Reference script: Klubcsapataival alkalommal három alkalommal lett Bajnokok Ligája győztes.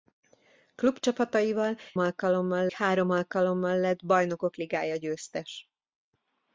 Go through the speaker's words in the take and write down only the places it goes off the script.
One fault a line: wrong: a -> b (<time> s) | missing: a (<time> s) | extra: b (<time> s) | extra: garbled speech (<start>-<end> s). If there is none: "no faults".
no faults